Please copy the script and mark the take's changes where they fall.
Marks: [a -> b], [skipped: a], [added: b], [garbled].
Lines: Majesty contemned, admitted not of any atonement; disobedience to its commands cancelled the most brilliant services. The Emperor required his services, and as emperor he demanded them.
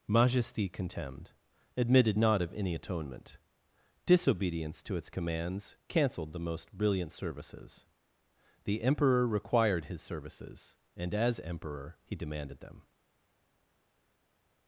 Majesty contemned, admitted not of any atonement; disobedience to its commands cancelled the most brilliant services. The Emperor required his services, and as emperor he demanded them.